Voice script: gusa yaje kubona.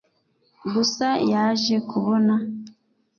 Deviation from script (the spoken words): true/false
false